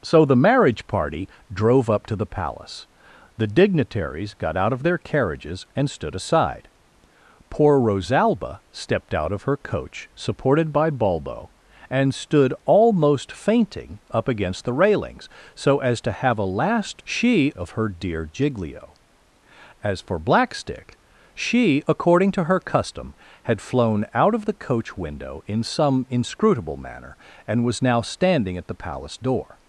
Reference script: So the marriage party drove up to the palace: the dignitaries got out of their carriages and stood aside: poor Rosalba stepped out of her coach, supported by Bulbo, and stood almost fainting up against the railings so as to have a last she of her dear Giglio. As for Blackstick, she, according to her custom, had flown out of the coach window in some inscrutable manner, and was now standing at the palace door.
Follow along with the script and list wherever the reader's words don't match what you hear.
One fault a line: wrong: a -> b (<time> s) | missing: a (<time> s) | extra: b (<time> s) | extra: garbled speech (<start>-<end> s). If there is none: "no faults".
no faults